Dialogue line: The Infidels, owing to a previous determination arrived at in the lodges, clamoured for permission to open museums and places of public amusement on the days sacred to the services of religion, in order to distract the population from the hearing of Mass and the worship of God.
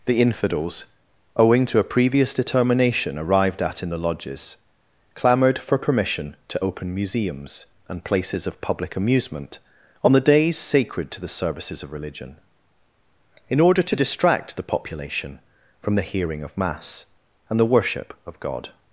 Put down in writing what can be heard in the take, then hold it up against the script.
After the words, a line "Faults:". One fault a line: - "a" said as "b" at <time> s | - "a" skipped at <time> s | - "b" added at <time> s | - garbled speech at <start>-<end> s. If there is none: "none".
The Infidels, owing to a previous determination arrived at in the lodges, clamoured for permission to open museums and places of public amusement on the days sacred to the services of religion, in order to distract the population from the hearing of Mass and the worship of God.
Faults:
none